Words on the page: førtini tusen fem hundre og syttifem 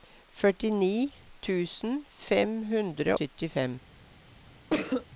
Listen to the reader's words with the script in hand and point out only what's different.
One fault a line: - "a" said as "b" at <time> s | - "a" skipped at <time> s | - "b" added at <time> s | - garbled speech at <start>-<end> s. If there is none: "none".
- "og" skipped at 3.2 s